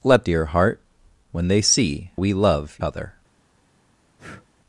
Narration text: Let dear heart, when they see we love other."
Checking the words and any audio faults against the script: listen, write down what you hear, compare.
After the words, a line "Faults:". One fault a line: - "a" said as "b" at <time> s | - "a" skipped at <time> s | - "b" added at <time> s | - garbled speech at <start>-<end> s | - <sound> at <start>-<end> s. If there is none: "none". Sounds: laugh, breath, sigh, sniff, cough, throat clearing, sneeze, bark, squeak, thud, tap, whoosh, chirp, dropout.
Let dear heart, when they see we love other."
Faults:
- breath at 4.2-4.5 s